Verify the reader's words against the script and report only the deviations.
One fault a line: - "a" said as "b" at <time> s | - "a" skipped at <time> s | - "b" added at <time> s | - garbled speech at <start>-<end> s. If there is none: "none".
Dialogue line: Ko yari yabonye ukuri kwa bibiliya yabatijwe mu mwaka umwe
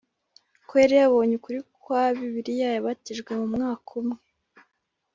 none